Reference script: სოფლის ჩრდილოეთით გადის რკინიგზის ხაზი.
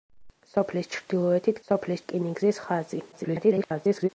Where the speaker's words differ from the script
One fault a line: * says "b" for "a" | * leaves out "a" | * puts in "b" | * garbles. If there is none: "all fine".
* says "სოფლის" for "გადის"
* garbles